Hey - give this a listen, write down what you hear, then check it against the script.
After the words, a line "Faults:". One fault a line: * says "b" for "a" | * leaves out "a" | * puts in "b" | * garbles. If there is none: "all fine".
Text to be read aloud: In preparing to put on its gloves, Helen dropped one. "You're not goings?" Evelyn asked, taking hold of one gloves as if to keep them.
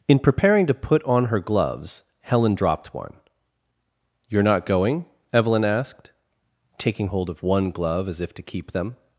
In preparing to put on her gloves, Helen dropped one. "You're not going?" Evelyn asked, taking hold of one glove as if to keep them.
Faults:
* says "her" for "its"
* says "going" for "goings"
* says "glove" for "gloves"